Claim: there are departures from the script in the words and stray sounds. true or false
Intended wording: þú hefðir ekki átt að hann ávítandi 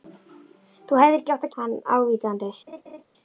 true